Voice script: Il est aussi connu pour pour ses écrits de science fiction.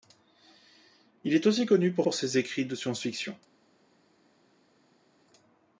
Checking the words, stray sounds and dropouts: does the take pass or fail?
pass